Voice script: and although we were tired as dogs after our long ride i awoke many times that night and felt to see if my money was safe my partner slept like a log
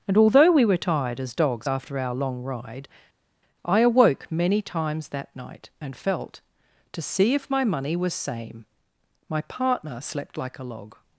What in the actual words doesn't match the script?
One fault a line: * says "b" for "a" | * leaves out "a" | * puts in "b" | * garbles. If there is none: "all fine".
* says "same" for "safe"